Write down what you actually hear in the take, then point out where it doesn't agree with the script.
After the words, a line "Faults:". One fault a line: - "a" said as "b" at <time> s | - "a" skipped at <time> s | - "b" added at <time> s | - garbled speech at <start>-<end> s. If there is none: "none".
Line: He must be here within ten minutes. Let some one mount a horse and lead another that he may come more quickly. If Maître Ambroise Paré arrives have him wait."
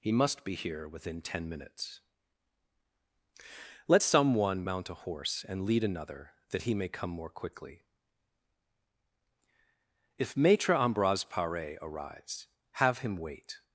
He must be here within ten minutes. Let some one mount a horse and lead another that he may come more quickly. If Maître Ambroise Paré arrives have him wait."
Faults:
none